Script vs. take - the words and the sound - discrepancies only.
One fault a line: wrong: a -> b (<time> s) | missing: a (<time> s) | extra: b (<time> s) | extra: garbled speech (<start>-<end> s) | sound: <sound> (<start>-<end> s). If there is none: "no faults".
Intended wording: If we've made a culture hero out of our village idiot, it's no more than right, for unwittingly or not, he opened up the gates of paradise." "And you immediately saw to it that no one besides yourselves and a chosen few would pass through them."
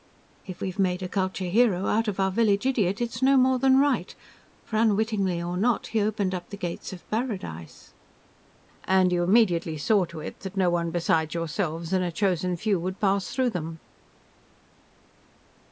no faults